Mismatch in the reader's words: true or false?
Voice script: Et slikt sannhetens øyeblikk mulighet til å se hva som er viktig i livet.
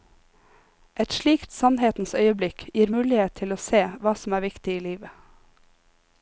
true